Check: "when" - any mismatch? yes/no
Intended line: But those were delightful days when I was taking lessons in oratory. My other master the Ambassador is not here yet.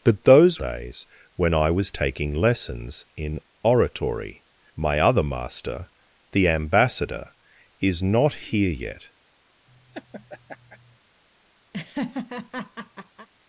no